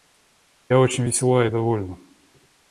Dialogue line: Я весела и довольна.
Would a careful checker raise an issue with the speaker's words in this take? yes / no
yes